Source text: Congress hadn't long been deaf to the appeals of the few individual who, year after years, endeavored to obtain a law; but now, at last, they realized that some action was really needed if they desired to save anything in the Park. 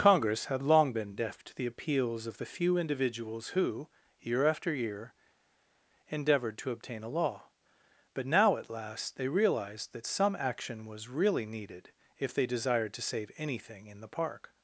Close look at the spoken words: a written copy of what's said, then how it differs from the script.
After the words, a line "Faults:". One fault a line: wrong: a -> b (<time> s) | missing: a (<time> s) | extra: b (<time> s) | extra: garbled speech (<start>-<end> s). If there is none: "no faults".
Congress had long been deaf to the appeals of the few individuals who, year after year, endeavored to obtain a law; but now, at last, they realized that some action was really needed if they desired to save anything in the Park.
Faults:
wrong: hadn't -> had (0.5 s)
wrong: individual -> individuals (2.8 s)
wrong: years -> year (4.7 s)